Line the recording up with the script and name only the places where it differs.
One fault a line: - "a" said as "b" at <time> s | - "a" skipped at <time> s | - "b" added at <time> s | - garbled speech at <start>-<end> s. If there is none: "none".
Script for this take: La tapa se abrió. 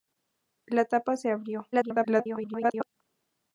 - garbled speech at 1.7-2.9 s